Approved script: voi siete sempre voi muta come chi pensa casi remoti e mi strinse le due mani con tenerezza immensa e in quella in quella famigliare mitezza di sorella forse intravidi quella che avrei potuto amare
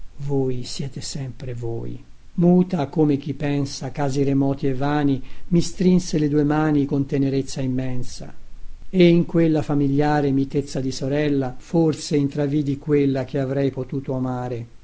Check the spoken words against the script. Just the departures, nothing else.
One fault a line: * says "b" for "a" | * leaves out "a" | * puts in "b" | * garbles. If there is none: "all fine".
* puts in "vani"
* leaves out "in quella"